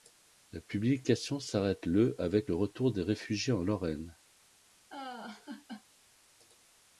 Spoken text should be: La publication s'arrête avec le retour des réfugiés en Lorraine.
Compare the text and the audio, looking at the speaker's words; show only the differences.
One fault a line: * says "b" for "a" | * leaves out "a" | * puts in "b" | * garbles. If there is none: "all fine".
* puts in "le"